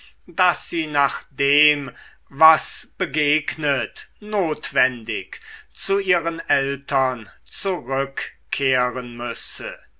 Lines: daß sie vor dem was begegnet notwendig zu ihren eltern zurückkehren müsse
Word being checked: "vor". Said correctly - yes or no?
no